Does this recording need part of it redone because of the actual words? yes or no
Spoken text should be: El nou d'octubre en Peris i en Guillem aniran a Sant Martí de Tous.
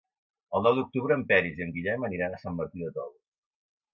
no